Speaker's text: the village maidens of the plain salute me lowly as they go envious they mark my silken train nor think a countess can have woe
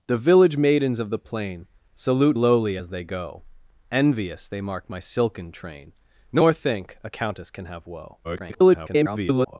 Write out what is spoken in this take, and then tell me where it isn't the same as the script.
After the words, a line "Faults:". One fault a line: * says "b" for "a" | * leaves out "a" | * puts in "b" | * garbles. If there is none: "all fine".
the village maidens of the plain salute lowly as they go envious they mark my silken train nor think a countess can have woe [garbled]
Faults:
* leaves out "me"
* garbles